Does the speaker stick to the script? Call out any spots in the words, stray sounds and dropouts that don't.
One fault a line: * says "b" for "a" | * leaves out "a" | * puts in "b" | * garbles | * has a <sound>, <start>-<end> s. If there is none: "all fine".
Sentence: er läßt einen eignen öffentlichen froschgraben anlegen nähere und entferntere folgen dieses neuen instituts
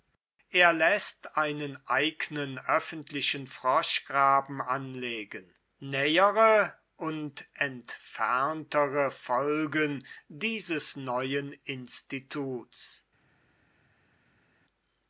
all fine